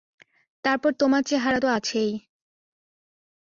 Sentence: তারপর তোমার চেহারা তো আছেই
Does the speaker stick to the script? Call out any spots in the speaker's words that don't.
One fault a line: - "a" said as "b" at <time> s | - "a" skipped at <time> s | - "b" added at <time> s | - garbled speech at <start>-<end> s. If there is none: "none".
none